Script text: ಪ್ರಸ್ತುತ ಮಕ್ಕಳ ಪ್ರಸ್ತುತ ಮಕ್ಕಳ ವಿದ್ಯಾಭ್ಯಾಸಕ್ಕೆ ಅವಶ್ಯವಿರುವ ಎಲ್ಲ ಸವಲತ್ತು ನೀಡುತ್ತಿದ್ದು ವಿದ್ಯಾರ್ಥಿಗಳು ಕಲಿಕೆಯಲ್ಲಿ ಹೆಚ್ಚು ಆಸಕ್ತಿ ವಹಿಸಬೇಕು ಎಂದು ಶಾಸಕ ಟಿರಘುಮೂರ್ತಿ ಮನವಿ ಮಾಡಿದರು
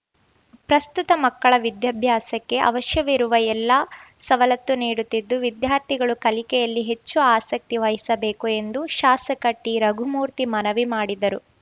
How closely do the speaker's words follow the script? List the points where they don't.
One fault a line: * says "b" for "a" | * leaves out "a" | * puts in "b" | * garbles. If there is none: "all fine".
* leaves out "ಪ್ರಸ್ತುತ ಮಕ್ಕಳ"